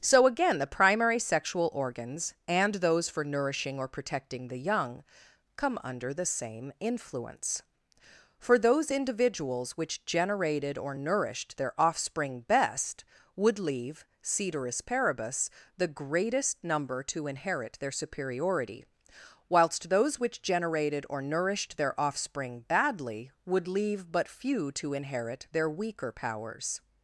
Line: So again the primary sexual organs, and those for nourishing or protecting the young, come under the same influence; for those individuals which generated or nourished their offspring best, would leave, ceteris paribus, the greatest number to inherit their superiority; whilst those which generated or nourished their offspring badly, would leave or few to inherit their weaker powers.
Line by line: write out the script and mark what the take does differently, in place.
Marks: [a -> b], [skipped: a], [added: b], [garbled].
So again the primary sexual organs, and those for nourishing or protecting the young, come under the same influence; for those individuals which generated or nourished their offspring best, would leave, ceteris paribus, the greatest number to inherit their superiority; whilst those which generated or nourished their offspring badly, would leave [or -> but] few to inherit their weaker powers.